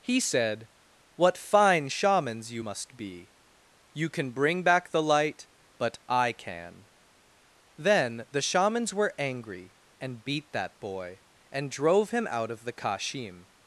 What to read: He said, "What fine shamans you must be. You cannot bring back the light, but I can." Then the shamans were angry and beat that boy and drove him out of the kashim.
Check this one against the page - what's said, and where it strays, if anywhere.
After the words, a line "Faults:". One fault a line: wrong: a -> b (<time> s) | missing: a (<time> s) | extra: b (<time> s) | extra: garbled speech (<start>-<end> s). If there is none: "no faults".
He said, "What fine shamans you must be. You can bring back the light, but I can." Then the shamans were angry and beat that boy and drove him out of the kashim.
Faults:
wrong: cannot -> can (4.1 s)